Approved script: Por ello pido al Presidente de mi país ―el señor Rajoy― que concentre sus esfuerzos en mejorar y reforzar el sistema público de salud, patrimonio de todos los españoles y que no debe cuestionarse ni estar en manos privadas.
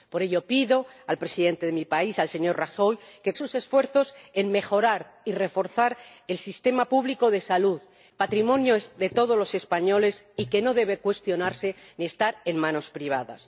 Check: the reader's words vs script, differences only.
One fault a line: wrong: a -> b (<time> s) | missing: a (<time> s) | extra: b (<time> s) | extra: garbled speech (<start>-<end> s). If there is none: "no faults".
missing: concentre (3.3 s)